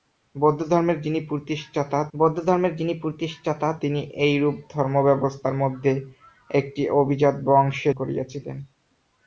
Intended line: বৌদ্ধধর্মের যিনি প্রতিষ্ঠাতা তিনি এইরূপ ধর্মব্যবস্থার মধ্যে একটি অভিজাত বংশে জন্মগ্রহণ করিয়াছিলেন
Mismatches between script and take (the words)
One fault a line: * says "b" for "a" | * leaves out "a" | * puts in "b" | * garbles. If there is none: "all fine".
* puts in "বৌদ্ধধর্মের যিনি প্রতিষ্ঠাতা"
* leaves out "জন্মগ্রহণ"